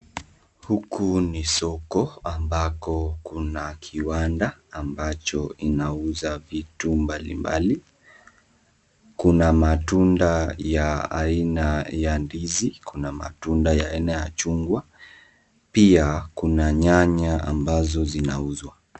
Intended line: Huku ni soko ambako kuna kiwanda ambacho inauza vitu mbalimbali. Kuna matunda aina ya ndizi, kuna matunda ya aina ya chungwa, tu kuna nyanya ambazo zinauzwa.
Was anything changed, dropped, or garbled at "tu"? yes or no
yes